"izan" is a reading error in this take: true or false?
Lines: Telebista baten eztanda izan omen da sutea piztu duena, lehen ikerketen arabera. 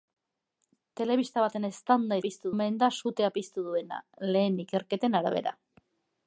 true